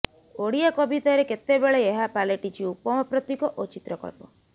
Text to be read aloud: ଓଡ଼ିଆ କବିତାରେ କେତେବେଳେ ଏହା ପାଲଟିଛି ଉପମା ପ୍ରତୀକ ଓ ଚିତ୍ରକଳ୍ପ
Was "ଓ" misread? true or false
false